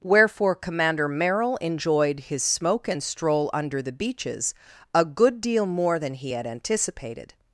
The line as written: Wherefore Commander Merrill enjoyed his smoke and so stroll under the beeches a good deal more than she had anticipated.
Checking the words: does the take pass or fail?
fail